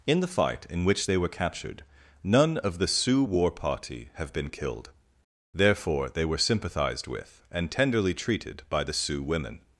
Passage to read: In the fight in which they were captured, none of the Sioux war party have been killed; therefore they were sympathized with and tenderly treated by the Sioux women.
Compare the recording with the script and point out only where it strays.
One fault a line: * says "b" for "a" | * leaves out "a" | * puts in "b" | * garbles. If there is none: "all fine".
all fine